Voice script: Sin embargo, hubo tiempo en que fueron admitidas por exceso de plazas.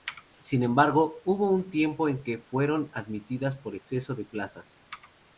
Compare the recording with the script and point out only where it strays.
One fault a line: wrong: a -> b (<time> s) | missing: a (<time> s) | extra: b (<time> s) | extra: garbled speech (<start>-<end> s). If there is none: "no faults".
extra: un (1.5 s)